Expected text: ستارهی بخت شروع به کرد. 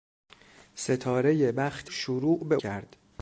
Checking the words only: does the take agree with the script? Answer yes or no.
yes